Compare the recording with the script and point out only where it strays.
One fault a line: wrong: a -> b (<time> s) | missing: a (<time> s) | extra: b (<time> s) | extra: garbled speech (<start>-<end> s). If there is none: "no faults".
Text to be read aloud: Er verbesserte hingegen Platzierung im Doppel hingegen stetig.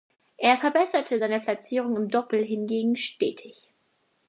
wrong: hingegen -> seine (1.2 s)